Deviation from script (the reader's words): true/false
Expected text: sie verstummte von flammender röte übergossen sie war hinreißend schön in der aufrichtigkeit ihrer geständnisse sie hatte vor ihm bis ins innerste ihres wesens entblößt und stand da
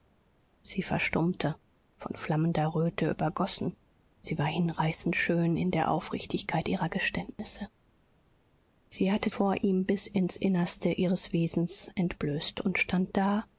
false